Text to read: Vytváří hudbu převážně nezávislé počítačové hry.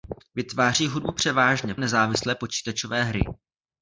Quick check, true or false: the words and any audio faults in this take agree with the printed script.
true